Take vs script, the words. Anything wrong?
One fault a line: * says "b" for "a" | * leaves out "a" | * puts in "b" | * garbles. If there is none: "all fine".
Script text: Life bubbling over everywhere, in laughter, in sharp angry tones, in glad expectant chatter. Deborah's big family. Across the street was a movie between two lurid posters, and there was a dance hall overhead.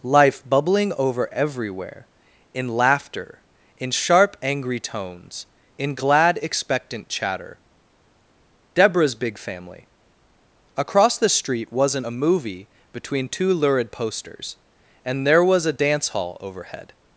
* says "wasn't" for "was"